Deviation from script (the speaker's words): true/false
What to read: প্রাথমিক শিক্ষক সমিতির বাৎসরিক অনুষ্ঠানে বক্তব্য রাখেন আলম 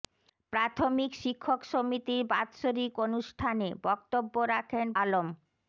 false